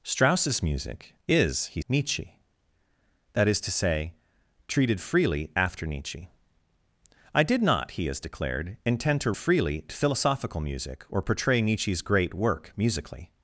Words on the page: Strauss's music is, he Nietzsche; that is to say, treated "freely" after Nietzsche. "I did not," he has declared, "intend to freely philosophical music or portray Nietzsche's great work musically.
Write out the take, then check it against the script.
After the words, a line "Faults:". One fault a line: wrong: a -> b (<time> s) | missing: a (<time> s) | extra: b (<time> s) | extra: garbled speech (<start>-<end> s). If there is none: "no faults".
Strauss's music is, he Nietzsche; that is to say, treated "freely" after Nietzsche. "I did not," he has declared, "intend to freely philosophical music or portray Nietzsche's great work musically.
Faults:
no faults